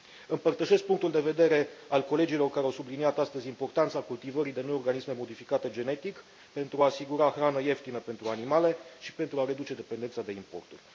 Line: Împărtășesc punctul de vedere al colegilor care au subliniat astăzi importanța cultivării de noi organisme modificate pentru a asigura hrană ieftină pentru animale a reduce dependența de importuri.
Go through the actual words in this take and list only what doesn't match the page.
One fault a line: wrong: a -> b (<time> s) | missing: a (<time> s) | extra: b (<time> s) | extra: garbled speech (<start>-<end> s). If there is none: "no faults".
extra: genetic (5.7 s)
extra: și pentru (9.0 s)